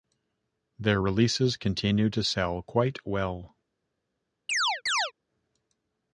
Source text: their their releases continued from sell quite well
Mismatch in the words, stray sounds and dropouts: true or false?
true